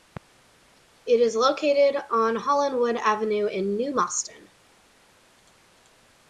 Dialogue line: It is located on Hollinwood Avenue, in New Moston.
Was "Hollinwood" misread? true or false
false